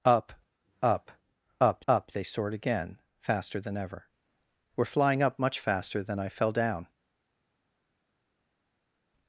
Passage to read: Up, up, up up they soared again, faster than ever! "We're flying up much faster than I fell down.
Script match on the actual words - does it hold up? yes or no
yes